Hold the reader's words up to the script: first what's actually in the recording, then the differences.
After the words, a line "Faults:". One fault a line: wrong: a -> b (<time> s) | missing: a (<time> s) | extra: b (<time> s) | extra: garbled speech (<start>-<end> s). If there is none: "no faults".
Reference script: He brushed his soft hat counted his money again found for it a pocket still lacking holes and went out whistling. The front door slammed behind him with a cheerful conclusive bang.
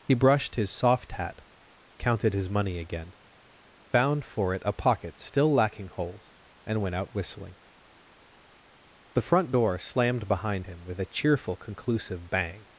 He brushed his soft hat counted his money again found for it a pocket still lacking holes and went out whistling. The front door slammed behind him with a cheerful conclusive bang.
Faults:
no faults